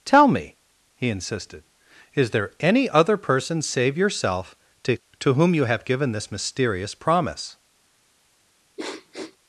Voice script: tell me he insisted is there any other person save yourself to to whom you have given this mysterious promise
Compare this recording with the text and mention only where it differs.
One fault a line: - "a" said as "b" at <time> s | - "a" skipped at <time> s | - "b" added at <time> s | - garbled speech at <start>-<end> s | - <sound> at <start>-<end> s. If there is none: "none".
- sniff at 8.8-9.4 s